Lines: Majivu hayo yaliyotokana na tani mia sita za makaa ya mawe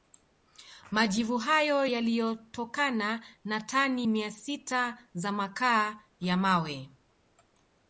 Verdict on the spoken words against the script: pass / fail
pass